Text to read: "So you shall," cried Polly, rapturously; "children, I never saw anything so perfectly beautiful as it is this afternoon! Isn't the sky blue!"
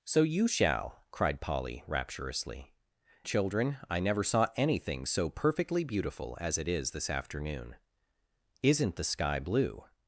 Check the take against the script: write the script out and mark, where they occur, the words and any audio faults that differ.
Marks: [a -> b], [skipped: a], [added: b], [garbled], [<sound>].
"So you shall," cried Polly, rapturously; "children, I never saw anything so perfectly beautiful as it is this afternoon! Isn't the sky blue!"